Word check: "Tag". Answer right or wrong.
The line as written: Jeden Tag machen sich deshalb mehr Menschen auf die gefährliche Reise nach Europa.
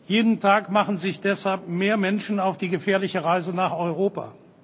right